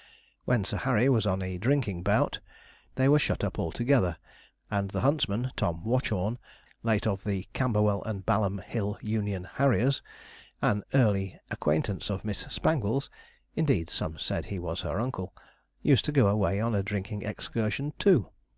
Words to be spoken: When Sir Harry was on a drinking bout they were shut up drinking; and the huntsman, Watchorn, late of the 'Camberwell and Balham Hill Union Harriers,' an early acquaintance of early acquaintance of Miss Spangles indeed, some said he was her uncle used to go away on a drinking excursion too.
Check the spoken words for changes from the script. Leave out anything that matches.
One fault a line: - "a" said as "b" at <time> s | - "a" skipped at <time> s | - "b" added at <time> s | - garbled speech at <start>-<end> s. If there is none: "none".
- "drinking" said as "altogether" at 3.6 s
- "Tom" added at 5.6 s
- "early acquaintance of" skipped at 12.2 s